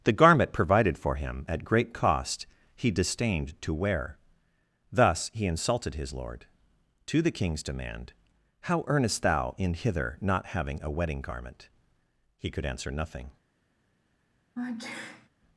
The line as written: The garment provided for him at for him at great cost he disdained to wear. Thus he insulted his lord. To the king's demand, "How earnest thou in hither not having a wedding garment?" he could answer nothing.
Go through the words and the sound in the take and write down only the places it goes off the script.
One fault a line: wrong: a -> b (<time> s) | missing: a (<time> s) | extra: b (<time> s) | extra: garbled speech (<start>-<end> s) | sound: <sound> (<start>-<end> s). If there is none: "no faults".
missing: for him at (1.6 s)
sound: sneeze (14.6-15.3 s)